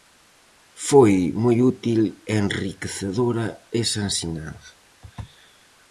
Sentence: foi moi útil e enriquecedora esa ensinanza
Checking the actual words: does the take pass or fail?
pass